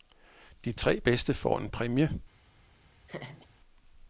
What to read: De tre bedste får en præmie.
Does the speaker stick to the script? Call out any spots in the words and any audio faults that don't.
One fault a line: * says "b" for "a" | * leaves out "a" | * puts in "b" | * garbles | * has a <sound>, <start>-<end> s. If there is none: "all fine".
* has a laugh, 3.1-3.5 s